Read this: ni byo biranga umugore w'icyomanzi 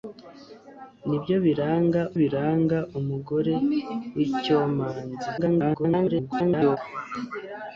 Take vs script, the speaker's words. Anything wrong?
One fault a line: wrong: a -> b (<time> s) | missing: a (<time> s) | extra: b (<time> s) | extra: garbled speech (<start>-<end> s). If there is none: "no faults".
extra: biranga (2.2 s)
extra: garbled speech (5.4-6.8 s)